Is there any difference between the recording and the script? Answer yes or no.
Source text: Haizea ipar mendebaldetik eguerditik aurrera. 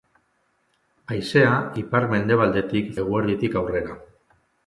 no